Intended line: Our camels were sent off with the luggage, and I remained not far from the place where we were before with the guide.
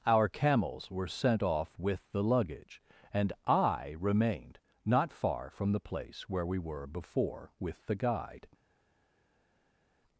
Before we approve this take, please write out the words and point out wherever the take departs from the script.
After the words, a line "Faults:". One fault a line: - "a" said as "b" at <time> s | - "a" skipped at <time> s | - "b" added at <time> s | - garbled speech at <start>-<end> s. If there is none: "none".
Our camels were sent off with the luggage, and I remained not far from the place where we were before with the guide.
Faults:
none